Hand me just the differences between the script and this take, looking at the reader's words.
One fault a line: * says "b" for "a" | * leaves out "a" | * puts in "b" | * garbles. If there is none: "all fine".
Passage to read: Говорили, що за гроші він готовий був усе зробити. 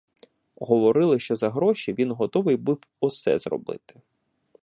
all fine